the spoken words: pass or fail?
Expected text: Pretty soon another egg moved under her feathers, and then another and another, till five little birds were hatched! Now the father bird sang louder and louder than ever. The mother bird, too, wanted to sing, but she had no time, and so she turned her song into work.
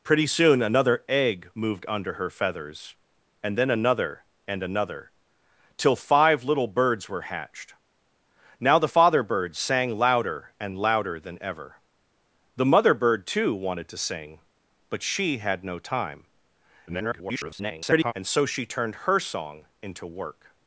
fail